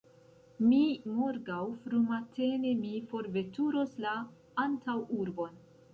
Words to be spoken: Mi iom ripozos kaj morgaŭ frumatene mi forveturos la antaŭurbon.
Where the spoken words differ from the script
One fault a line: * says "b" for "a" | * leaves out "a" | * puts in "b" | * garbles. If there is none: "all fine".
* leaves out "iom ripozos kaj"